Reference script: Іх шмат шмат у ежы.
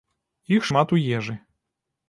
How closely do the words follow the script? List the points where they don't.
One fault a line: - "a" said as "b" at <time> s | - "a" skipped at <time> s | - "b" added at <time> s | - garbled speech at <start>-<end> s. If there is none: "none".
- "шмат" skipped at 0.9 s